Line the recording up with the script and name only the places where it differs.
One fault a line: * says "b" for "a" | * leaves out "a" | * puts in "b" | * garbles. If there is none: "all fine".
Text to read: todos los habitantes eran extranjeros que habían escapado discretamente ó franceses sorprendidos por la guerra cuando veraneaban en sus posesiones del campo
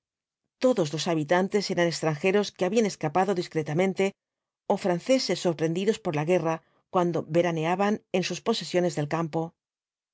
all fine